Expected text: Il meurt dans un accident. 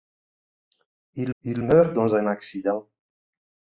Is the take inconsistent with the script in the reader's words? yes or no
yes